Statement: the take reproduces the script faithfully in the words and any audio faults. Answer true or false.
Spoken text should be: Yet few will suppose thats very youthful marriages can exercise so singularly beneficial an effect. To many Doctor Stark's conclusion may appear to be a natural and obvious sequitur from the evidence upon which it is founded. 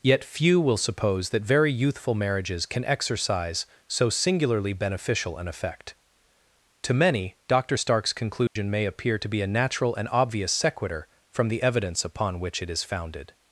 false